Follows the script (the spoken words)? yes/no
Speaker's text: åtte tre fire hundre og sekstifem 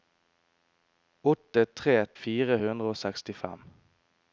yes